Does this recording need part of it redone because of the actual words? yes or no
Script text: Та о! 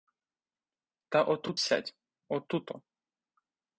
yes